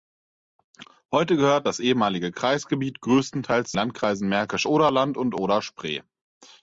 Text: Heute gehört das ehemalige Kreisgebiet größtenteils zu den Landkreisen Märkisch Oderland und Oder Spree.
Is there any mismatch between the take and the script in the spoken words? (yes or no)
yes